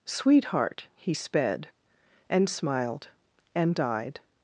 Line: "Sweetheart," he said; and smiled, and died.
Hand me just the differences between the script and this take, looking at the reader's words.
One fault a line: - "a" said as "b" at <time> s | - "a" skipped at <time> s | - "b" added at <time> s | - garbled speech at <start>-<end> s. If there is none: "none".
- "said" said as "sped" at 1.1 s